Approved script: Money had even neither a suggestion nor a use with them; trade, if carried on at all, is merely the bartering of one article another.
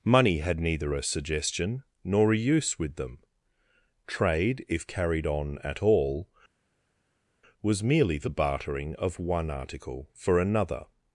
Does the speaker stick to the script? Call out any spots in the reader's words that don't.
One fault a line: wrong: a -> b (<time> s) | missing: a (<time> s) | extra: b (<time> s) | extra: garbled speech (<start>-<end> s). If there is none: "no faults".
missing: even (0.6 s)
wrong: is -> was (7.6 s)
extra: for (10.1 s)